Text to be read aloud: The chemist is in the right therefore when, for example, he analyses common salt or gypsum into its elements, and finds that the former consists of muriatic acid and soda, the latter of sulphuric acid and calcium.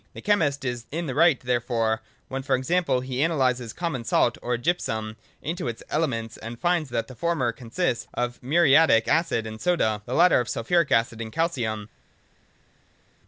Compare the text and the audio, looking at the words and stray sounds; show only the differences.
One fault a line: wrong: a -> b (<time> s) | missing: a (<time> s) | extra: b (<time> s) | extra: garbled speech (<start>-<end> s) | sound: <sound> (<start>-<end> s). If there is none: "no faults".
no faults